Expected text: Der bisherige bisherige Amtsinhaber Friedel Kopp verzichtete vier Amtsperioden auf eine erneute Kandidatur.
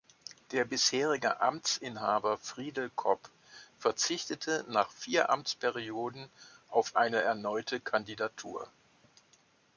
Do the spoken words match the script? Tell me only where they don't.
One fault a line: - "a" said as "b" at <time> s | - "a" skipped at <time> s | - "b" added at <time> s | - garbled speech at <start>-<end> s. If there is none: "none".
- "bisherige" skipped at 1.4 s
- "nach" added at 4.7 s